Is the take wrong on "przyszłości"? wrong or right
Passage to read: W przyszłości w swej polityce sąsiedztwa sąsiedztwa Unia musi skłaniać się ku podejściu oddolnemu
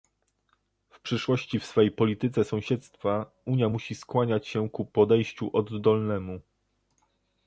right